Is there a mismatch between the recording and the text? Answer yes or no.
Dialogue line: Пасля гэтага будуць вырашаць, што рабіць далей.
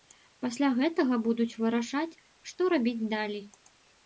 no